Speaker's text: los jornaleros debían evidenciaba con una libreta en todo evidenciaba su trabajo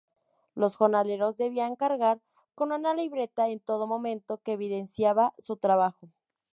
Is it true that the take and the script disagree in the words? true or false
true